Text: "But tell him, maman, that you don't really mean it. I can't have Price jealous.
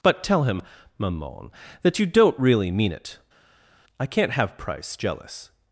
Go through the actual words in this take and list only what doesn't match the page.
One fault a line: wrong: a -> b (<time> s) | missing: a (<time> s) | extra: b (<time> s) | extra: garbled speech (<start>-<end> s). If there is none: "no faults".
no faults